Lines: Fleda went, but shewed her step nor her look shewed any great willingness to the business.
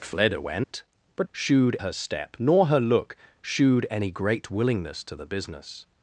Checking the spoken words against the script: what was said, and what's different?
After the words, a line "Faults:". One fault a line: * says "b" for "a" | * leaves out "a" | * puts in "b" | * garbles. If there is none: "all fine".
Fleda went, but shewed her step nor her look shewed any great willingness to the business.
Faults:
all fine